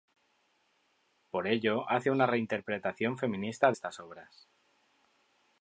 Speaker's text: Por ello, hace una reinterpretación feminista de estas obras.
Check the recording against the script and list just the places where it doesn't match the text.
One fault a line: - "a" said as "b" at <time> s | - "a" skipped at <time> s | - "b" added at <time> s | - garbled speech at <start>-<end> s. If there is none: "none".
- "de" skipped at 3.7 s